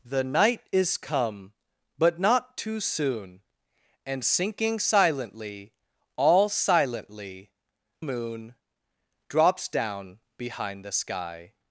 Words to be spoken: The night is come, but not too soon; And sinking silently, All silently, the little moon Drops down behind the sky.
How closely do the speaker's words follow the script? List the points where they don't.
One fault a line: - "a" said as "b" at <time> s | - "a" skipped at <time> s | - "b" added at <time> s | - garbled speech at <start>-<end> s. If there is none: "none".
- "the little" skipped at 7.5 s